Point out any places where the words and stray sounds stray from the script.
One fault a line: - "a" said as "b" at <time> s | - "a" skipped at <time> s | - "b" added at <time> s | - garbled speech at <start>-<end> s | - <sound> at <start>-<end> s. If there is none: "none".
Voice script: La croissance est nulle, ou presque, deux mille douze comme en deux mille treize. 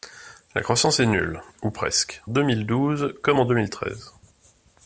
none